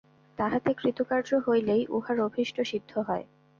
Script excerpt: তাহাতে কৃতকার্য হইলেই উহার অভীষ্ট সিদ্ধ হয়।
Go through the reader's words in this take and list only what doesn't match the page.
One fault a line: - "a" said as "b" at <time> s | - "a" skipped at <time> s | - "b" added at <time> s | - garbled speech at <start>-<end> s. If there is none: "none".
none